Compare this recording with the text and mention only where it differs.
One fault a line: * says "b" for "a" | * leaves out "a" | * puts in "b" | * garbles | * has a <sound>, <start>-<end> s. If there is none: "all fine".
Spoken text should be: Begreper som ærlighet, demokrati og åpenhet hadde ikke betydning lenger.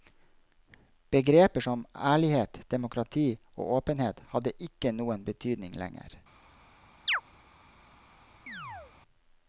* puts in "noen"
* has a chirp, 7.1-7.2 s
* has a chirp, 8.5-8.9 s